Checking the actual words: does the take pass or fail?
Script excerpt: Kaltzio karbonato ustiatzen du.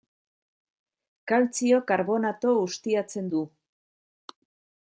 pass